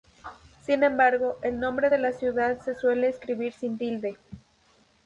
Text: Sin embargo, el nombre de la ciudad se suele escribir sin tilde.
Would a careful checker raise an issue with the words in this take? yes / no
no